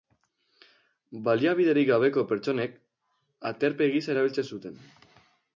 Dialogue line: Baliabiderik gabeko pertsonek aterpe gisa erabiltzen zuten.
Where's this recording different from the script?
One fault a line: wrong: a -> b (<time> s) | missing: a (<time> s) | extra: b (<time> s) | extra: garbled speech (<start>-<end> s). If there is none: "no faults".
no faults